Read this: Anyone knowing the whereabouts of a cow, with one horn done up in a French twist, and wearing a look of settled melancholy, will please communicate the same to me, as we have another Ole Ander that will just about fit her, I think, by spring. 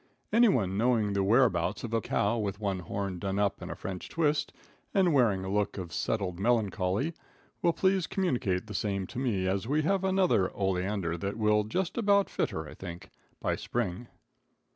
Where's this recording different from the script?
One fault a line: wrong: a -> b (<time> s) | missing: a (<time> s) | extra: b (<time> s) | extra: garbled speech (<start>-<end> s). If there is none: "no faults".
no faults